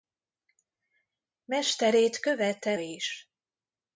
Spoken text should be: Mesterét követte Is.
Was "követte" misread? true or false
false